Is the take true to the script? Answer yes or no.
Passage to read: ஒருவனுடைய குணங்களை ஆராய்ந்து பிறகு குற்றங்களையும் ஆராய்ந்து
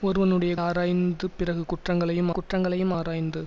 no